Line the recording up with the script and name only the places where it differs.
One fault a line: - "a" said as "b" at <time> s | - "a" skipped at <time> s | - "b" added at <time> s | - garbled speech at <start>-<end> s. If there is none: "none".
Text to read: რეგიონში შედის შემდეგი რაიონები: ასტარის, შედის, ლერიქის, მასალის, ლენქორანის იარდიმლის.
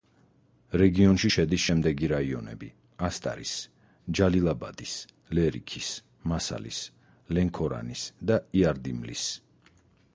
- "შედის" said as "ჯალილაბადის" at 4.2 s
- "და" added at 8.3 s